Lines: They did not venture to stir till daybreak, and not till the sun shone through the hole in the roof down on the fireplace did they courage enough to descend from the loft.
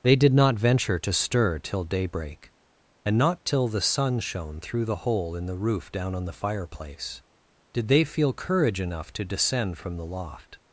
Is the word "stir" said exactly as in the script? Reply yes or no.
yes